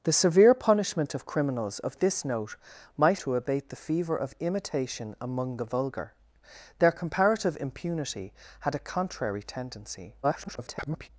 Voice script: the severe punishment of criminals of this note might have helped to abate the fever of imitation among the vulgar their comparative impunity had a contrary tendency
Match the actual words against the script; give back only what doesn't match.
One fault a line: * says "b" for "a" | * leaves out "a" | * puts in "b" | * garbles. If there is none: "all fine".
* leaves out "have helped"
* garbles